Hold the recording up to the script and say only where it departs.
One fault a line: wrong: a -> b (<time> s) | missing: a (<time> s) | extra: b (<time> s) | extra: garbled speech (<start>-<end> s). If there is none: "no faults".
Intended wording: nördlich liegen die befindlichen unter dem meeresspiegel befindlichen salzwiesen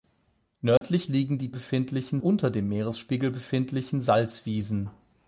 no faults